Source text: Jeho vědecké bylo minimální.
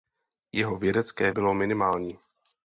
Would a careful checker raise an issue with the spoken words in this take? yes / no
no